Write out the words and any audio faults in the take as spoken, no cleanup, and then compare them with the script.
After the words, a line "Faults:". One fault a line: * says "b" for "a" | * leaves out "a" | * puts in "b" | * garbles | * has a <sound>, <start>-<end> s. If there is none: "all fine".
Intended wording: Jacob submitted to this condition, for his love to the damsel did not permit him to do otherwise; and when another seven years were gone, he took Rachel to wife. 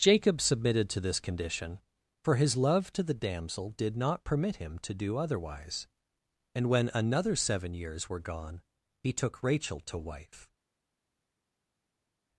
Jacob submitted to this condition, for his love to the damsel did not permit him to do otherwise; and when another seven years were gone, he took Rachel to wife.
Faults:
all fine